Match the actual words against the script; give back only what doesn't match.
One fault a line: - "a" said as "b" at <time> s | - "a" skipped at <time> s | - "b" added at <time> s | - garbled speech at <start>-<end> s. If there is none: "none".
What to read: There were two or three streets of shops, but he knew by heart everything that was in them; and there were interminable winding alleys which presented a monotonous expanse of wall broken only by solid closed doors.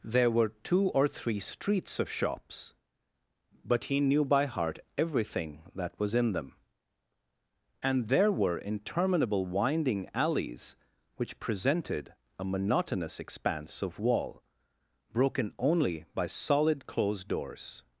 none